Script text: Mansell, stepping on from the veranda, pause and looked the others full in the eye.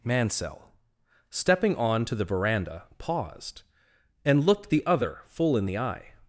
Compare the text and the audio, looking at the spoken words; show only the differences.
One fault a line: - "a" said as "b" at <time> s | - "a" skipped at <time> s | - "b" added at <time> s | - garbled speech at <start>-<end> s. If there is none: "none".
- "from" said as "to" at 2.0 s
- "pause" said as "paused" at 3.0 s
- "others" said as "other" at 4.8 s